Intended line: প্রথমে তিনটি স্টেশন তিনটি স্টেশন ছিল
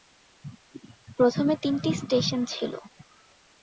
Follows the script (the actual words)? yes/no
no